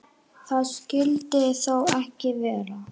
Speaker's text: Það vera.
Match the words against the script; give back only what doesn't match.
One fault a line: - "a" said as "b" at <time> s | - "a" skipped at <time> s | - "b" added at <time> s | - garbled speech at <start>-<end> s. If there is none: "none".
- "skyldi þó ekki" added at 0.7 s